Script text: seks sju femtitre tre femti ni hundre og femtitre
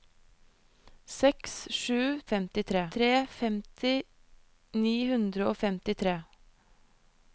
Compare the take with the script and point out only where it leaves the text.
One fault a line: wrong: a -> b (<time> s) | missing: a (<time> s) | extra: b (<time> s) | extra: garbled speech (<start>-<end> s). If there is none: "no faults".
no faults